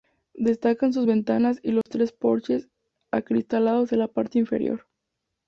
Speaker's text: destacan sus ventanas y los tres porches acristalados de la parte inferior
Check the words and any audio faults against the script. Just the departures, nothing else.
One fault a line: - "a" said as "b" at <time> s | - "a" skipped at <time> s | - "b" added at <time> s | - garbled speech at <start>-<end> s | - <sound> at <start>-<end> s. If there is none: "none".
- dropout at 1.8-1.9 s